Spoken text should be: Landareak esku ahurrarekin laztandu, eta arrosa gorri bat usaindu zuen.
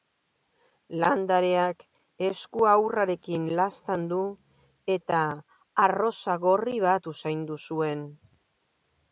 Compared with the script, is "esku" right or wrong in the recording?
right